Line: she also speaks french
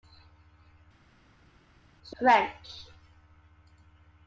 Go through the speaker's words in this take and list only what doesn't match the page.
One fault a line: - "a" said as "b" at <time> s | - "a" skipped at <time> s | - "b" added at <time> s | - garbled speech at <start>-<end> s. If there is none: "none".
- "also speaks" skipped at 2.2 s